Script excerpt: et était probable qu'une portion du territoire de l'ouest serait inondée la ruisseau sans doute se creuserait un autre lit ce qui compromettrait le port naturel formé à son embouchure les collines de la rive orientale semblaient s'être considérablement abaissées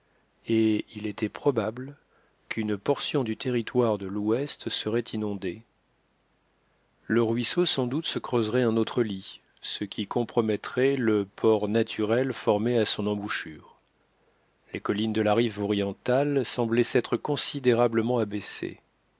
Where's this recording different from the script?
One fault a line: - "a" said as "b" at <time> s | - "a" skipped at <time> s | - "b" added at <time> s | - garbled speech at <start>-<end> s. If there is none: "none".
- "il" added at 0.9 s
- "la" said as "le" at 7.0 s